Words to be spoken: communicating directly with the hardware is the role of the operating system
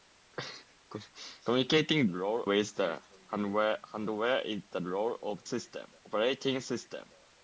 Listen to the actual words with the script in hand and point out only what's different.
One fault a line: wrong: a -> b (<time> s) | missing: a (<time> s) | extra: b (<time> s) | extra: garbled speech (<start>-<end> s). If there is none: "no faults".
wrong: directly -> role (2.1 s)
wrong: the -> system (5.4 s)